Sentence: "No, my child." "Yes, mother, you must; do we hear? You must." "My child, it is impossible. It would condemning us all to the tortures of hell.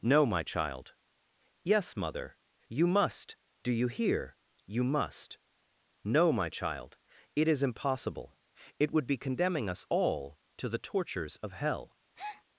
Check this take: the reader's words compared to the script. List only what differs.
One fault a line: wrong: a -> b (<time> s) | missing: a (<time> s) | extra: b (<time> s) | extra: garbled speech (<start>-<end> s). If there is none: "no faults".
wrong: we -> you (3.7 s)
extra: No (6.0 s)
extra: be (9.1 s)